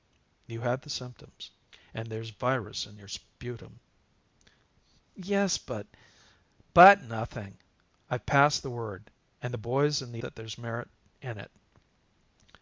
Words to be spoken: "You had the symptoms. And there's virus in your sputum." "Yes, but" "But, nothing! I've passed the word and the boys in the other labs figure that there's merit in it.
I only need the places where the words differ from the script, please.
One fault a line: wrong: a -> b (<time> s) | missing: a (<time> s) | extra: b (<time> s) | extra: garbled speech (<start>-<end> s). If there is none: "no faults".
missing: other labs figure (10.2 s)